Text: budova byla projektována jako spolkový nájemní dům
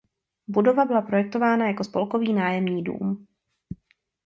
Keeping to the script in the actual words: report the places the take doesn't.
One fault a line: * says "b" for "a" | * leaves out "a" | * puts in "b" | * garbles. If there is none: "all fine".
all fine